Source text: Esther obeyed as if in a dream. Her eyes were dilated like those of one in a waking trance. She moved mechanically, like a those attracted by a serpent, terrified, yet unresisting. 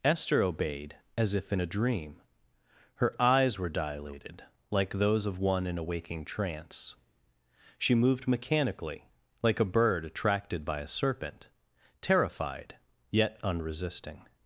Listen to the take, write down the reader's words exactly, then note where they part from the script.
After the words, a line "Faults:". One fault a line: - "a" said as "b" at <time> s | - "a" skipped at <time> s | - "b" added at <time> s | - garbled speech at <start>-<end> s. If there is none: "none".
Esther obeyed as if in a dream. Her eyes were dilated like those of one in a waking trance. She moved mechanically, like a bird attracted by a serpent, terrified, yet unresisting.
Faults:
- "those" said as "bird" at 9.6 s